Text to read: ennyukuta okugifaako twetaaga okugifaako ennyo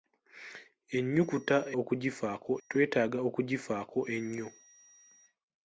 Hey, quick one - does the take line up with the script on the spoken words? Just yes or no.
yes